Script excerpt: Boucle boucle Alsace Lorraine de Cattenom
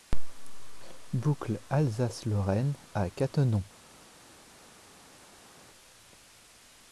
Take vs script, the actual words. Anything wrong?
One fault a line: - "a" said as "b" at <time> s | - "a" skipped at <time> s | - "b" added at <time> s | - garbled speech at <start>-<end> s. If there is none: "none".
- "boucle" skipped at 1.6 s
- "de" said as "à" at 3.0 s